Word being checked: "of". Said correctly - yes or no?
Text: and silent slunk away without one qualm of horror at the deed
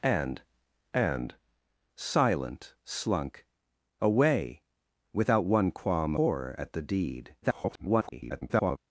no